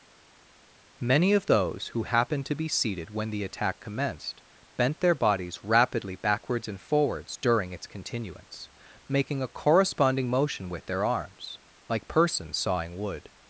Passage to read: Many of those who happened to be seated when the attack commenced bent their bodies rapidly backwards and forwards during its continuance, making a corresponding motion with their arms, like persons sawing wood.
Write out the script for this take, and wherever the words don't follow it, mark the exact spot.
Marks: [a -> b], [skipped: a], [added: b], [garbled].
Many of those who happened to be seated when the attack commenced bent their bodies rapidly backwards and forwards during its continuance, making a corresponding motion with their arms, like persons sawing wood.